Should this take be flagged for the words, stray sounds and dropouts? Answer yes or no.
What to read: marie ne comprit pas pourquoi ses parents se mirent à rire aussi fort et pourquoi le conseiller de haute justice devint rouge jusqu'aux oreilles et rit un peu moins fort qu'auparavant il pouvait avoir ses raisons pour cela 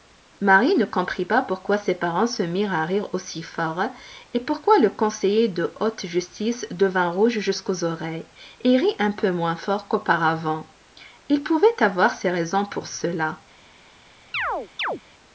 yes